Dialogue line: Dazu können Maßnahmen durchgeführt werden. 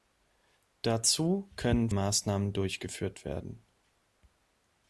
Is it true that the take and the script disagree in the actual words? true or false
false